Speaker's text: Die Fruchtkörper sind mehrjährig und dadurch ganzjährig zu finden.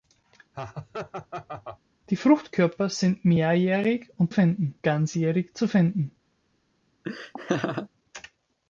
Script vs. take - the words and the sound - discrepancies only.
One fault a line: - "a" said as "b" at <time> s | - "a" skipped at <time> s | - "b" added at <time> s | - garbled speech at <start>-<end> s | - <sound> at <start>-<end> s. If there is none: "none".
- laugh at 0.5-1.8 s
- "dadurch" said as "finden" at 4.3 s
- laugh at 7.0-7.9 s